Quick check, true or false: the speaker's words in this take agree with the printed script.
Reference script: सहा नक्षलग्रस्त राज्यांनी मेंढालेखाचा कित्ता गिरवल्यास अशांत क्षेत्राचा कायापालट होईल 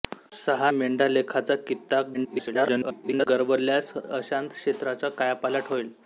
false